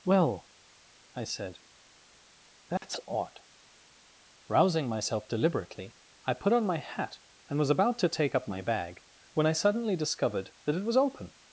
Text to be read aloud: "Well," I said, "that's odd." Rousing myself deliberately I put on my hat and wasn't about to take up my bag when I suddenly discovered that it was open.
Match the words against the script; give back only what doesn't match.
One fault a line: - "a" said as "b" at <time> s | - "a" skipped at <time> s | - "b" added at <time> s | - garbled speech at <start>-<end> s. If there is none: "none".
- "wasn't" said as "was" at 7.6 s